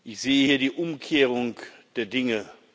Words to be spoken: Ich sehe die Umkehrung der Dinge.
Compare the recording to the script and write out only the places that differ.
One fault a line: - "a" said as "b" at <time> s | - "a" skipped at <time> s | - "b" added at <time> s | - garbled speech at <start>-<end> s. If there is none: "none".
- "hier" added at 0.5 s